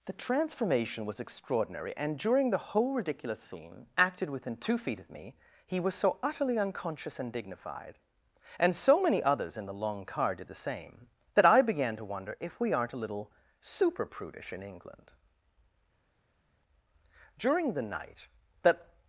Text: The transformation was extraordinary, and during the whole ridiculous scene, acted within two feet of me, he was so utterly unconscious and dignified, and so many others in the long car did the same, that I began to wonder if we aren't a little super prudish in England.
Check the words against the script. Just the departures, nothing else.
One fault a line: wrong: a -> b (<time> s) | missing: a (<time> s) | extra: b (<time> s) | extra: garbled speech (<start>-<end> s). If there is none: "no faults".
extra: During the night that (17.4 s)